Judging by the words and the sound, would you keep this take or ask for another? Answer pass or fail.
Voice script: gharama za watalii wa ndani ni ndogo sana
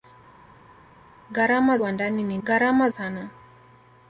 fail